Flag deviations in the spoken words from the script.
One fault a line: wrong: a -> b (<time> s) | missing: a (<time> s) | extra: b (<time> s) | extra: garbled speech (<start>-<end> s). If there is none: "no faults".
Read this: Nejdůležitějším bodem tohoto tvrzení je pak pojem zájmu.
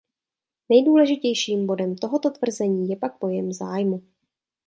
no faults